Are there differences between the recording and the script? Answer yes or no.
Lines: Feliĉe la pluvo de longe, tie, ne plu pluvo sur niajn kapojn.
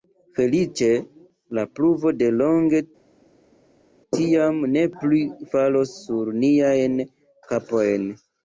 yes